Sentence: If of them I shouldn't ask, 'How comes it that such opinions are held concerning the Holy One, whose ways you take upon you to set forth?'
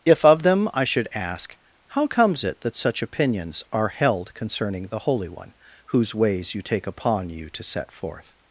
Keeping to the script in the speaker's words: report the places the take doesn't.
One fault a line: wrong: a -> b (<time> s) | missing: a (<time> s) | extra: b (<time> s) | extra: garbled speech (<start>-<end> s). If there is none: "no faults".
wrong: shouldn't -> should (0.8 s)